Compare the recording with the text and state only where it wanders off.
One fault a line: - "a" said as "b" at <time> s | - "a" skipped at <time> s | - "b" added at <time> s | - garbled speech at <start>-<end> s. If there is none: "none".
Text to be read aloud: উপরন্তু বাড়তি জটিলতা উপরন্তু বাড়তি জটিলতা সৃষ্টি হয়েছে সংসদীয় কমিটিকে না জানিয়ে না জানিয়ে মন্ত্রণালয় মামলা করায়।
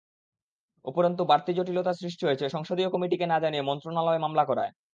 - "উপরন্তু বাড়তি জটিলতা" skipped at 1.9 s
- "না জানিয়ে" skipped at 3.7 s